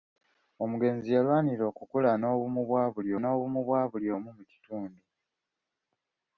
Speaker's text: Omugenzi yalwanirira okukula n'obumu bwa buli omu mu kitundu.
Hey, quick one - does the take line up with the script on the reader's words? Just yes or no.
no